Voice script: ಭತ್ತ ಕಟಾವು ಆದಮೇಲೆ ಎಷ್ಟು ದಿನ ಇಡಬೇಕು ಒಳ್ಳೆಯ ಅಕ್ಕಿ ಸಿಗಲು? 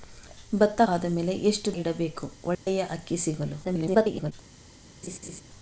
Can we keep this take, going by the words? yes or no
no